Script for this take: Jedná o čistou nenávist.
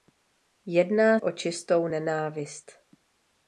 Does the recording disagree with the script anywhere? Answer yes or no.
no